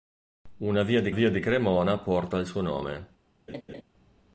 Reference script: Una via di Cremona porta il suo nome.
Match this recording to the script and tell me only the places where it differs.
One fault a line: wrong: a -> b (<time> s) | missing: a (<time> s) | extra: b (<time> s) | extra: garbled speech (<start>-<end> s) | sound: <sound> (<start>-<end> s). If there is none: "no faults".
extra: via di (1.1 s)
sound: laugh (3.5-3.8 s)